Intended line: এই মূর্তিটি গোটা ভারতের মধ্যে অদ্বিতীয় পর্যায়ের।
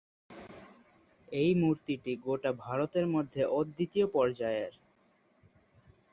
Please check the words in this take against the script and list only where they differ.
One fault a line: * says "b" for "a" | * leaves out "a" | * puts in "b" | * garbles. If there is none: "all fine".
all fine